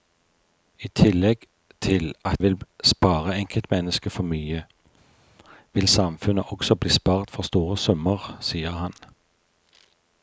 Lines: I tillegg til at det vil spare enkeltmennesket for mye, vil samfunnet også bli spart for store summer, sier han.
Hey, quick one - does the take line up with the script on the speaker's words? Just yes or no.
no